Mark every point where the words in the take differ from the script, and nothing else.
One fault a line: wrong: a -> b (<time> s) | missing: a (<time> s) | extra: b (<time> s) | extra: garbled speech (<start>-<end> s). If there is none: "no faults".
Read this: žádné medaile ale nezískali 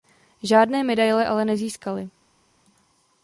no faults